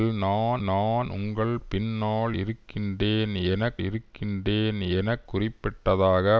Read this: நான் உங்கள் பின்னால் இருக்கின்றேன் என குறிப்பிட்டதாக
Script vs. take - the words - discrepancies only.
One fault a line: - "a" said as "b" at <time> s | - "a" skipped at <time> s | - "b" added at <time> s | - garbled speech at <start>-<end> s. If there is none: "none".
- "நான்" added at 0.6 s
- "இருக்கின்றேன் என" added at 3.8 s